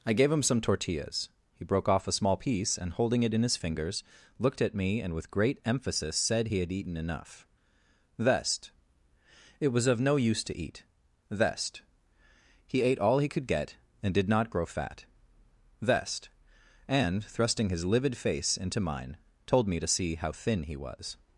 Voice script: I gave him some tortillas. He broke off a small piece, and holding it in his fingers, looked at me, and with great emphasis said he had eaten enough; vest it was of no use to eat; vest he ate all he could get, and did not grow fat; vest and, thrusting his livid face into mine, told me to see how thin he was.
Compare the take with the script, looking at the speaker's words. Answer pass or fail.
pass